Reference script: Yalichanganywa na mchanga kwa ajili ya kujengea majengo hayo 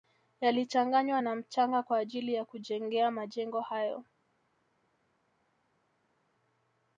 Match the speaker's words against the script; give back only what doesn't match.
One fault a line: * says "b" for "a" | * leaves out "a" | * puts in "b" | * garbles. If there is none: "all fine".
all fine